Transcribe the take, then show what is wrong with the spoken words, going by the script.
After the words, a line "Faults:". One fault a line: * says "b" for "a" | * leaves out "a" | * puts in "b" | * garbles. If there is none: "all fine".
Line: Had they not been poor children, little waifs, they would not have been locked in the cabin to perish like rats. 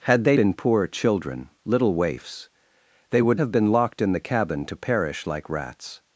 Had they been poor children, little waifs, they would have been locked in the cabin to perish like rats.
Faults:
* leaves out "not"
* leaves out "not"